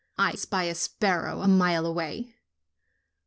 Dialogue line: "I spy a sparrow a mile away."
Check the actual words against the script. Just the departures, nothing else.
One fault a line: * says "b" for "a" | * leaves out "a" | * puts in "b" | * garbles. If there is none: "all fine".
all fine